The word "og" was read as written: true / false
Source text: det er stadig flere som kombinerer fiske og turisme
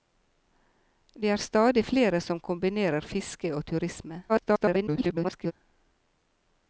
true